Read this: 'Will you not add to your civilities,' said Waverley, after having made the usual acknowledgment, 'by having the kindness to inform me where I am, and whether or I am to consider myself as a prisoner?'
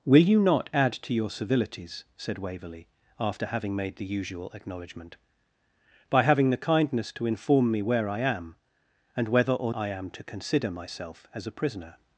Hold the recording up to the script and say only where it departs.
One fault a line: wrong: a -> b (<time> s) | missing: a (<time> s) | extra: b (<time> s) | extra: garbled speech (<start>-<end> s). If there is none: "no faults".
no faults